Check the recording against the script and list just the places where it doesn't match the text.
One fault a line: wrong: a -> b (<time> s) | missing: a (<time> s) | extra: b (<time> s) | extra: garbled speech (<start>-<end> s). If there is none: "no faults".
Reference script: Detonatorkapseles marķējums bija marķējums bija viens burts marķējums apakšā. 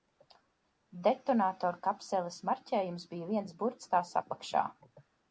missing: marķējums bija (3.3 s)
wrong: marķējums -> tās (3.9 s)